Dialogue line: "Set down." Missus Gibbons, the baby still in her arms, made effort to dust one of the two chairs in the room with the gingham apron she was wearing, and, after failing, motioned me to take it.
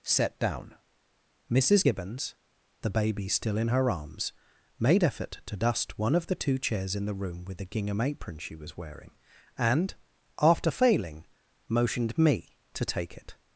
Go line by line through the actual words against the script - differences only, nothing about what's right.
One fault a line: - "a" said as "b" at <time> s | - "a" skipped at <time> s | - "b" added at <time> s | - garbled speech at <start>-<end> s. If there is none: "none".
none